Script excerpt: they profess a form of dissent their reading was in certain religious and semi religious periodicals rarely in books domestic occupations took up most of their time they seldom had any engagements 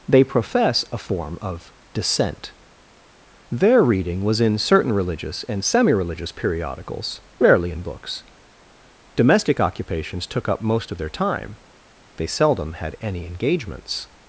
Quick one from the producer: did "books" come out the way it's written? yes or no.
yes